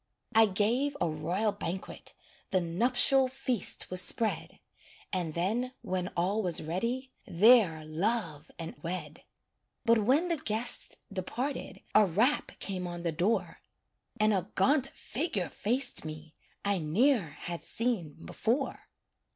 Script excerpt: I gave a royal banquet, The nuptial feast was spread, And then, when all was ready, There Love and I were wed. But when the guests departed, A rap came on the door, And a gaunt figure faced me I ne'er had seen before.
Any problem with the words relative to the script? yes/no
yes